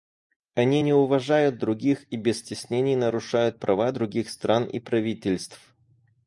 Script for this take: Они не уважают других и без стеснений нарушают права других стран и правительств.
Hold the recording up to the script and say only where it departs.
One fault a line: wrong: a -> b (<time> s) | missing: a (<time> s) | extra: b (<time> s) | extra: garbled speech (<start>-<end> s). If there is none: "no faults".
no faults